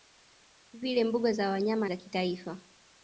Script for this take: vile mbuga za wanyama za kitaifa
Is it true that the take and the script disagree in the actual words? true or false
false